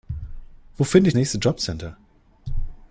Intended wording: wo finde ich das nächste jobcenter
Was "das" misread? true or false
true